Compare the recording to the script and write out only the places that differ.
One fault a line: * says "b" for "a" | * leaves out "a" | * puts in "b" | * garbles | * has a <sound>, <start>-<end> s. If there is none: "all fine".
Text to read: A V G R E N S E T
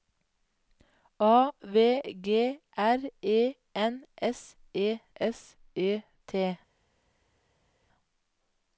* puts in "S E"